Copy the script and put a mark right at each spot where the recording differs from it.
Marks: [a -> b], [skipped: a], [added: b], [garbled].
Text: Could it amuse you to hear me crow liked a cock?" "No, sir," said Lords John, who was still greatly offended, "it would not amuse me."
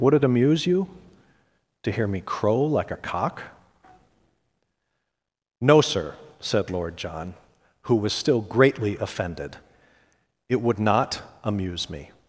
[Could -> Would] it amuse you to hear me crow [liked -> like] a cock?" "No, sir," said [Lords -> Lord] John, who was still greatly offended, "it would not amuse me."